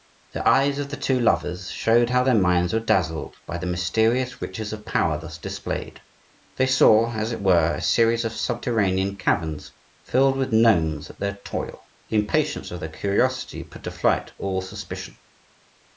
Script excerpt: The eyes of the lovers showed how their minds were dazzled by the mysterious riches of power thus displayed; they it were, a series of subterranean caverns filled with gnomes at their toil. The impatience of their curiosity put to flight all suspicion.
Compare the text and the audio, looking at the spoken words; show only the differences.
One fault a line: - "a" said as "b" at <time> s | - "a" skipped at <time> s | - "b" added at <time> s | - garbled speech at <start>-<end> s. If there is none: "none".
- "two" added at 1.0 s
- "saw as" added at 6.7 s